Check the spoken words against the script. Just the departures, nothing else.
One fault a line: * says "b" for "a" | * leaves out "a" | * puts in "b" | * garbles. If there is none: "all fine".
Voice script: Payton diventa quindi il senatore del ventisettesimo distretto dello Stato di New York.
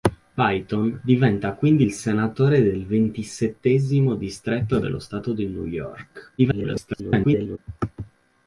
* garbles